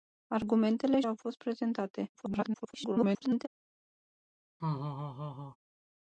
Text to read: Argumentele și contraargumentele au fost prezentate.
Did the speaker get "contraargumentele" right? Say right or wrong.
wrong